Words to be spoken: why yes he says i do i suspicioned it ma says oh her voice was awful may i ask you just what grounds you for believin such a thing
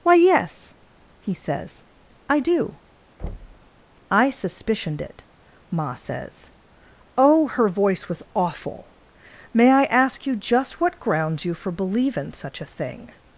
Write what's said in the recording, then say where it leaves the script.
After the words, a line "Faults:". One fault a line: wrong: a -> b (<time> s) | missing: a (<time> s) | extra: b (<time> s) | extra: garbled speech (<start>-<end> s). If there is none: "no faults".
why yes he says i do i suspicioned it ma says oh her voice was awful may i ask you just what grounds you for believin such a thing
Faults:
no faults